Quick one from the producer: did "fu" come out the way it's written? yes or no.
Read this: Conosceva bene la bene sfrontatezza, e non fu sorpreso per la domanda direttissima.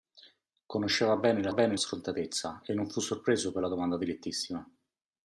yes